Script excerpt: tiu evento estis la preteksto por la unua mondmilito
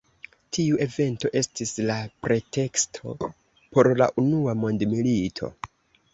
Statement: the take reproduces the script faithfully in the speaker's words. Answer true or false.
true